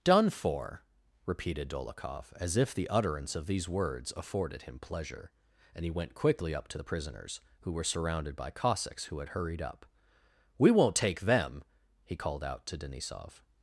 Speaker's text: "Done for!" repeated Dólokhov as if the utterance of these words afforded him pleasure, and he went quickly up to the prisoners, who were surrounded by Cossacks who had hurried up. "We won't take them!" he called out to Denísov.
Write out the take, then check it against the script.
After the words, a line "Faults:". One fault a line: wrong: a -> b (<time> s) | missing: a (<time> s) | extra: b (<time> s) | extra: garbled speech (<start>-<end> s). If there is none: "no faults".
"Done for!" repeated Dólokhov as if the utterance of these words afforded him pleasure, and he went quickly up to the prisoners, who were surrounded by Cossacks who had hurried up. "We won't take them!" he called out to Denísov.
Faults:
no faults